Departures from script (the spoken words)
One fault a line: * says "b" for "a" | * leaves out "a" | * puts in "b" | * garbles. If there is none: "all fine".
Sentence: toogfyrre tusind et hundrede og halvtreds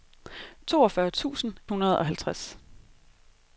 * leaves out "et"